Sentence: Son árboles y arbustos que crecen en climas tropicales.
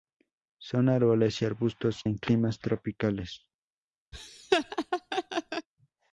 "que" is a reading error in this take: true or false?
true